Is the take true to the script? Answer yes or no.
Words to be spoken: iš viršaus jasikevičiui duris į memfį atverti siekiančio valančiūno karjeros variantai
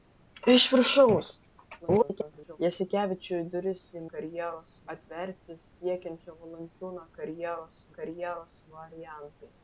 no